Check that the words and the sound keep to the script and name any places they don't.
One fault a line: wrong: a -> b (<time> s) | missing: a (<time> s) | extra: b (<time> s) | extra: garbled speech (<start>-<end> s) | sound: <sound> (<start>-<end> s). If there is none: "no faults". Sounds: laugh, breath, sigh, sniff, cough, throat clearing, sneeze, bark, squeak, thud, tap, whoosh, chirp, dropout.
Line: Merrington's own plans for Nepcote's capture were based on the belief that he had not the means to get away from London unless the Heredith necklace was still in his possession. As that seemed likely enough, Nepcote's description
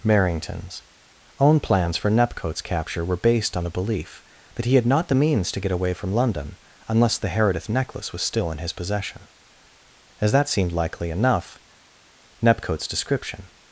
no faults